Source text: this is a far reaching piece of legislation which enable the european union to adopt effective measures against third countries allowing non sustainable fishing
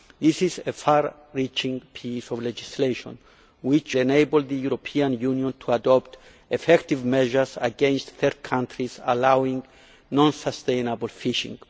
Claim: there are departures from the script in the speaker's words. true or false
false